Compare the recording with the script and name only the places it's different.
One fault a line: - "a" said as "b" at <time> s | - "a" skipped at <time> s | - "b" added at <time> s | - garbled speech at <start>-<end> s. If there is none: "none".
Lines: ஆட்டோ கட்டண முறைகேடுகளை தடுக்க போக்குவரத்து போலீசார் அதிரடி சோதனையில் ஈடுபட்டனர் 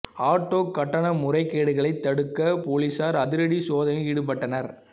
- "போக்குவரத்து" skipped at 2.4 s